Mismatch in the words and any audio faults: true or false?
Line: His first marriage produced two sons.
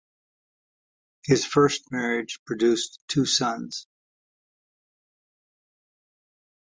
false